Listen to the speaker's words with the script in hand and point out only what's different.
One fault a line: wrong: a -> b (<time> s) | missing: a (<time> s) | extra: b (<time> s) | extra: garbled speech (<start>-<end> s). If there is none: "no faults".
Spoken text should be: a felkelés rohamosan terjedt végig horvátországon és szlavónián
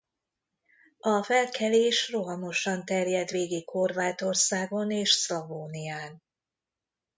no faults